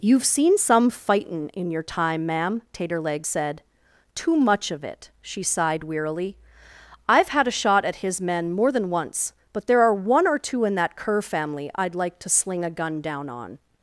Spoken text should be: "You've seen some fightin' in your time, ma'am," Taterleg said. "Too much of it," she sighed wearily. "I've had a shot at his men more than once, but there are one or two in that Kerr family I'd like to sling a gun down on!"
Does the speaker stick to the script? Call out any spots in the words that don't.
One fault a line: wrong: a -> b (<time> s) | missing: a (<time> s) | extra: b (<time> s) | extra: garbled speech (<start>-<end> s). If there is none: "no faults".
no faults